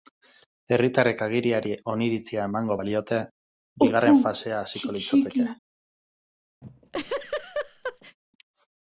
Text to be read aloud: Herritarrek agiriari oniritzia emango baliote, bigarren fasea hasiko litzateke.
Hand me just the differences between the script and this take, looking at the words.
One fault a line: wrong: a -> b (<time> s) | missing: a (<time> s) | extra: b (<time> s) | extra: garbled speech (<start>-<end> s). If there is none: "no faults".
no faults